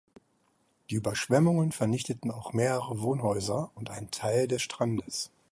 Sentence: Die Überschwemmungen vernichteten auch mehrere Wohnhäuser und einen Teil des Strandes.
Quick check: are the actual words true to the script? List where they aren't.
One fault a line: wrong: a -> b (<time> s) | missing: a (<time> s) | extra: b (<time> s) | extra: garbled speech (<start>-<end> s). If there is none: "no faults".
no faults